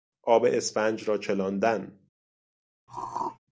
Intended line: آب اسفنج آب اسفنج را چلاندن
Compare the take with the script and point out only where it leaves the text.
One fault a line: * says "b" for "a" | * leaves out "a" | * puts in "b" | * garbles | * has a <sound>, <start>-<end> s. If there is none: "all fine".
* leaves out "آب اسفنج"
* has a throat clearing, 2.9-3.4 s